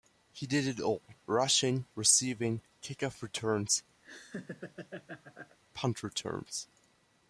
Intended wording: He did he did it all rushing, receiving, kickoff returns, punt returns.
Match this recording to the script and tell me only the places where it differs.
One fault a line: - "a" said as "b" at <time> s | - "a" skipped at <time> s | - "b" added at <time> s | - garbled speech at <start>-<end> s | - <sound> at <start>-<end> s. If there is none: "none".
- "he did" skipped at 0.7 s
- laugh at 4.0-5.6 s